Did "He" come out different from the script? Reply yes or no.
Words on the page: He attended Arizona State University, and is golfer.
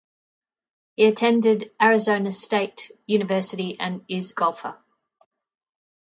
no